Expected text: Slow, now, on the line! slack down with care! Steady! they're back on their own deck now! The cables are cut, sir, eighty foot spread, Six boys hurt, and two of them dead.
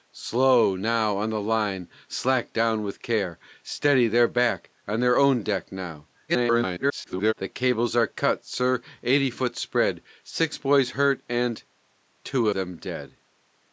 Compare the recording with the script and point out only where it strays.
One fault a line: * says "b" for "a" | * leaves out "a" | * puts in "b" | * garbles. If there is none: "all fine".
* garbles
* leaves out "of"